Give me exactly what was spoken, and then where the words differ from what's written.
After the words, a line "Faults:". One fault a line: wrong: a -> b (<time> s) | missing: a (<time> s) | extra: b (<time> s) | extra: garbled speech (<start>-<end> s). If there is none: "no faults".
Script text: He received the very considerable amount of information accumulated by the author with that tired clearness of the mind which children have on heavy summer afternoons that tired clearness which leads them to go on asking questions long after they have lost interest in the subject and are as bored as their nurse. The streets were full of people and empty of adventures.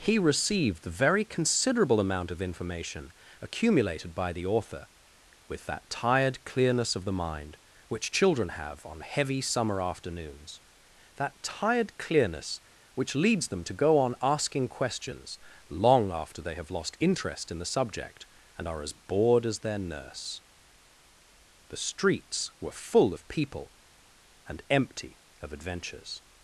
He received the very considerable amount of information accumulated by the author with that tired clearness of the mind which children have on heavy summer afternoons that tired clearness which leads them to go on asking questions long after they have lost interest in the subject and are as bored as their nurse. The streets were full of people and empty of adventures.
Faults:
no faults